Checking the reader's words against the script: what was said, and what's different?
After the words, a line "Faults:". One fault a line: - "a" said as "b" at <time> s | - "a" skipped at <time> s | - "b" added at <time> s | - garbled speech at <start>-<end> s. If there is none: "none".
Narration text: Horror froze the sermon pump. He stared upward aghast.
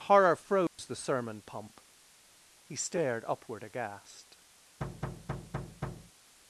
Horror froze the sermon pump. He stared upward aghast.
Faults:
none